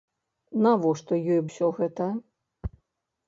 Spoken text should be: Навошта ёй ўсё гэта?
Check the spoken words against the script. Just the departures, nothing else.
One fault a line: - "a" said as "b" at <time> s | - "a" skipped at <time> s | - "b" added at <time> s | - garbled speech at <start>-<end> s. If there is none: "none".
none